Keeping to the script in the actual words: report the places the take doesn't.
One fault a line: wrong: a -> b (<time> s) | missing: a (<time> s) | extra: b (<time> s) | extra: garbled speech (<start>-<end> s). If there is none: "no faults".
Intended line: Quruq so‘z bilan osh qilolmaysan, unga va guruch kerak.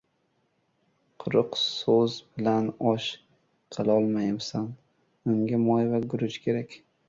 extra: moy (5.7 s)